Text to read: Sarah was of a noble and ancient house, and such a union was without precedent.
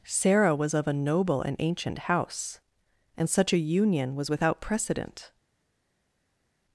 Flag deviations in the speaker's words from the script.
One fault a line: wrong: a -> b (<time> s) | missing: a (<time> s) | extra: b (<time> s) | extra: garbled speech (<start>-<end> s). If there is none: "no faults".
no faults